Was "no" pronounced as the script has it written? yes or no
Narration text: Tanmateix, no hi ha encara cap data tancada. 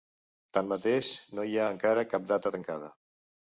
yes